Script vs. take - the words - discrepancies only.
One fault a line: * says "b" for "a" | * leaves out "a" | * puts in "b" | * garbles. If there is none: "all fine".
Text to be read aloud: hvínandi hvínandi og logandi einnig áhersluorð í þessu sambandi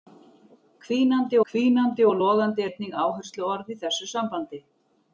all fine